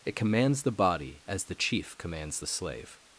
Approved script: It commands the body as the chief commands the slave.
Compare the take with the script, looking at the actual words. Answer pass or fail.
pass